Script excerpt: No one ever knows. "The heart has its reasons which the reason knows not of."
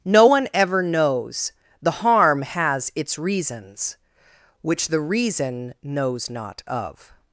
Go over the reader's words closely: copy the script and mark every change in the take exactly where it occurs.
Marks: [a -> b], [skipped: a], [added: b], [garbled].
No one ever knows. "The [heart -> harm] has its reasons which the reason knows not of."